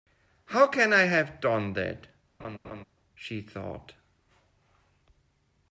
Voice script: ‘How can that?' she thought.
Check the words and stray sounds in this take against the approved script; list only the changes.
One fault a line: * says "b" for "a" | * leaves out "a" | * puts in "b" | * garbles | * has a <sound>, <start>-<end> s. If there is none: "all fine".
* puts in "I have done"
* has a laugh, 2.4-2.8 s